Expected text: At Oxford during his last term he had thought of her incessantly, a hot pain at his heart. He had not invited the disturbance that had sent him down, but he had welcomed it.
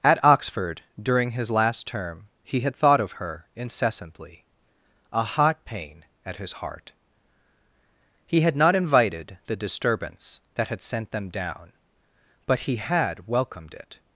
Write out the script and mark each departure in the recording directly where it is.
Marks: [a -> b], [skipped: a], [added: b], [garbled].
At Oxford during his last term he had thought of her incessantly, a hot pain at his heart. He had not invited the disturbance that had sent [him -> them] down, but he had welcomed it.